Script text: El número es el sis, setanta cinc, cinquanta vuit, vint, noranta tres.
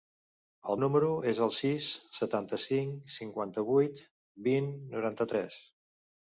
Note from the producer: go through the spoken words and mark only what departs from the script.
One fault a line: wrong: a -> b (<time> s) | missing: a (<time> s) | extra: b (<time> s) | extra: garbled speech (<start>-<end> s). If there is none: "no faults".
no faults